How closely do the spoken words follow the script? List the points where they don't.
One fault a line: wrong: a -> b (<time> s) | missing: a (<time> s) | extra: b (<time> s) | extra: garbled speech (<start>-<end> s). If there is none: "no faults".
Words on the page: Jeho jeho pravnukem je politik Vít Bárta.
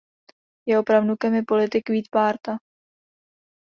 missing: jeho (0.8 s)